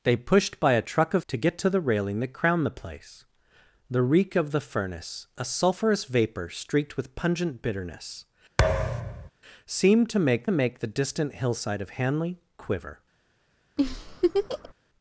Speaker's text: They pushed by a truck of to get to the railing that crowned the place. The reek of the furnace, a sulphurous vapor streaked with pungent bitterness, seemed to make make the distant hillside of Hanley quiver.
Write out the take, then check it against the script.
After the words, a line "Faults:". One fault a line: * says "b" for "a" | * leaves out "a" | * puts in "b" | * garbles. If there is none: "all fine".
They pushed by a truck of to get to the railing that crowned the place. The reek of the furnace, a sulphurous vapor streaked with pungent bitterness, seemed to make make the distant hillside of Hanley quiver.
Faults:
all fine